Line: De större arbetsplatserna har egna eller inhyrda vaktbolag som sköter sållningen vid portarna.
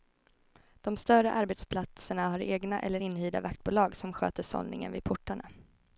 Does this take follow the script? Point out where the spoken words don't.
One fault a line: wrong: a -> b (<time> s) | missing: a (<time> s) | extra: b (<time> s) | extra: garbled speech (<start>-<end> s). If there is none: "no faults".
no faults